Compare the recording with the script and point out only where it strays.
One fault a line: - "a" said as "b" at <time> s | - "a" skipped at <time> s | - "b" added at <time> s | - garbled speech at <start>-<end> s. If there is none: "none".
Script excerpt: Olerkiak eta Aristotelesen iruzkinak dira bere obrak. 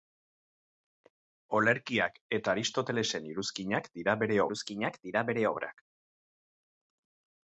- "iruzkinak dira bere" added at 4.5 s